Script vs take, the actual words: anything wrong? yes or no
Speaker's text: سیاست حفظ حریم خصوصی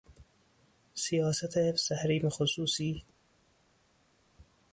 no